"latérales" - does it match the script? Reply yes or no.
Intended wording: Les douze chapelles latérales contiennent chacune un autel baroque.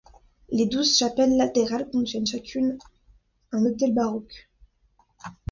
yes